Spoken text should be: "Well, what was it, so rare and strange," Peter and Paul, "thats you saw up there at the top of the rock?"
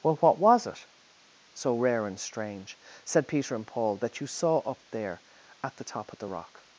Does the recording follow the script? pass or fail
fail